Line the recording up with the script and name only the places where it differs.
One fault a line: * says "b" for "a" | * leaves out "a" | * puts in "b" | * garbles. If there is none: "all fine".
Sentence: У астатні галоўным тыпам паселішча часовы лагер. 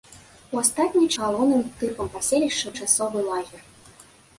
all fine